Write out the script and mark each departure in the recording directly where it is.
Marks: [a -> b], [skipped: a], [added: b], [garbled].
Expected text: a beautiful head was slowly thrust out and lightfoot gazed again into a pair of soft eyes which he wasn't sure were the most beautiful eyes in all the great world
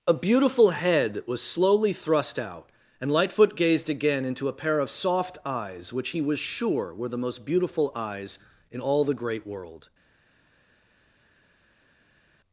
a beautiful head was slowly thrust out and lightfoot gazed again into a pair of soft eyes which he [wasn't -> was] sure were the most beautiful eyes in all the great world